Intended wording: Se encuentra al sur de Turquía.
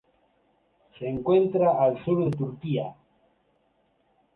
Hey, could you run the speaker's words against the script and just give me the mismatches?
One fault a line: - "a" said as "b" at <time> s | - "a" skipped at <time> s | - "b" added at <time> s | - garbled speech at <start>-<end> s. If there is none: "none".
none